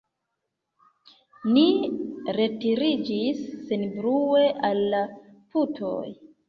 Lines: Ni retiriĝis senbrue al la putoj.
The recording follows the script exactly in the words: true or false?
true